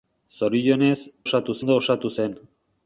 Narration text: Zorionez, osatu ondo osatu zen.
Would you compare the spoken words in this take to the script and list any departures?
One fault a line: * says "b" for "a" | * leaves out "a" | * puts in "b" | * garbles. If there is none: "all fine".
all fine